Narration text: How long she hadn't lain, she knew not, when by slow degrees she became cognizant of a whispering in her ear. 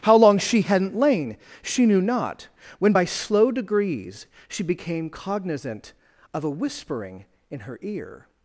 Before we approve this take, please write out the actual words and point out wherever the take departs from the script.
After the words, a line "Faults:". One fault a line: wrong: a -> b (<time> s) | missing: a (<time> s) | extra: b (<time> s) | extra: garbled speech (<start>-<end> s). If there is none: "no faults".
How long she hadn't lain, she knew not, when by slow degrees she became cognizant of a whispering in her ear.
Faults:
no faults